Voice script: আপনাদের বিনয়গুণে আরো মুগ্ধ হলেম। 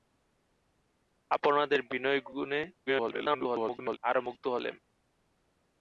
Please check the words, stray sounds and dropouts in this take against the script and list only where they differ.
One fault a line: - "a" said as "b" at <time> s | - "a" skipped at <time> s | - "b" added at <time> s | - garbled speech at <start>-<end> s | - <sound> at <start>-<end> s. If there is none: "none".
- garbled speech at 2.9-4.0 s